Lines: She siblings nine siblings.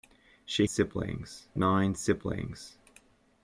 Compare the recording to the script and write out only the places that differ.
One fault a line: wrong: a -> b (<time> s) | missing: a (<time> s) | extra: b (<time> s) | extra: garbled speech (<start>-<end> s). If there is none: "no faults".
no faults